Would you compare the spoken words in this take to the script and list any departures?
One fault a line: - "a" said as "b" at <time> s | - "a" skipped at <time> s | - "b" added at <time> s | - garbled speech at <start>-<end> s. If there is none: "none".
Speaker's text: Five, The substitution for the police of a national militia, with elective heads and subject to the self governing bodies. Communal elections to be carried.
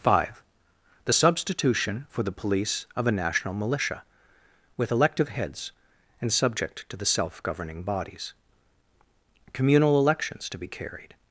none